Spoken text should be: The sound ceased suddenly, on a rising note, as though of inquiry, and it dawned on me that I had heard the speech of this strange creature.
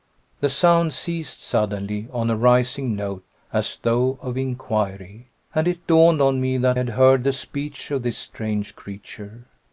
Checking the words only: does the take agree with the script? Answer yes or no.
no